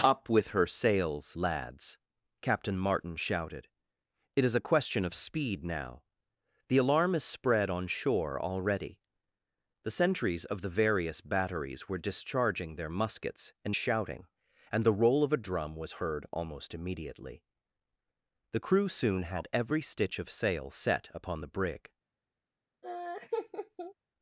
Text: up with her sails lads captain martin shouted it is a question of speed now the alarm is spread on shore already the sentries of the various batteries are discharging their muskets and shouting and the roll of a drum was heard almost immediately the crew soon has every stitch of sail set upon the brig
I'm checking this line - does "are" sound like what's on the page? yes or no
no